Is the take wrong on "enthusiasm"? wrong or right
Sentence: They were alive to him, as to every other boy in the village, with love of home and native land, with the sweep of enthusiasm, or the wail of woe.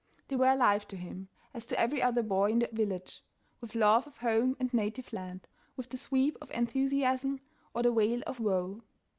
right